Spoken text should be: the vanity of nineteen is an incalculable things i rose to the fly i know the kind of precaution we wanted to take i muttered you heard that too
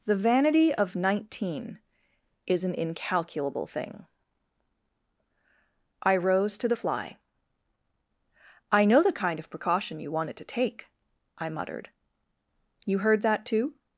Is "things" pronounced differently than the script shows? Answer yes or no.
yes